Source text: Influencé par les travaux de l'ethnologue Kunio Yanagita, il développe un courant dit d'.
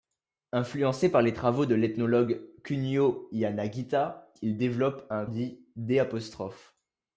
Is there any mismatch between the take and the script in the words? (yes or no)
yes